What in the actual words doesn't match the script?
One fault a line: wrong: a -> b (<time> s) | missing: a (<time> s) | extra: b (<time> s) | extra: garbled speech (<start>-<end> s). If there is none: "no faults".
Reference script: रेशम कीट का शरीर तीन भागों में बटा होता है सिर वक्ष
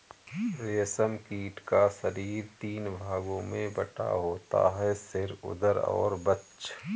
extra: उदर और (5.4 s)